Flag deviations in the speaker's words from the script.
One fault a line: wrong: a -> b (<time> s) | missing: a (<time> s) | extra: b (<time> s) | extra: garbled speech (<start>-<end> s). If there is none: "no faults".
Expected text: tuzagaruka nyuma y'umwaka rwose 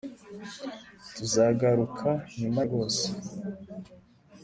missing: y'umwaka (2.6 s)